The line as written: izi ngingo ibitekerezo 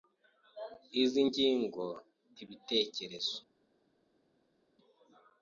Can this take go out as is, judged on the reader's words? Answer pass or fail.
pass